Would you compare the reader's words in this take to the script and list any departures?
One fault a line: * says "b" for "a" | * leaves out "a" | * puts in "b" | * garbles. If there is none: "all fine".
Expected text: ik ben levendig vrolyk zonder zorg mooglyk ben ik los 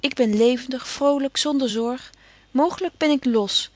all fine